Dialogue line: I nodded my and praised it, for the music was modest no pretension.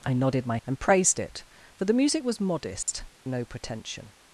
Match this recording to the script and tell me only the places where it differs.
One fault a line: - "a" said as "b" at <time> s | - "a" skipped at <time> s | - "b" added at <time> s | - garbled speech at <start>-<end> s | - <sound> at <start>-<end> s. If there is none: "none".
- dropout at 2.8-2.9 s